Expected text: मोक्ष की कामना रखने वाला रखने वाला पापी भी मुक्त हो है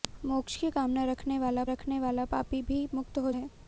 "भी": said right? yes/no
yes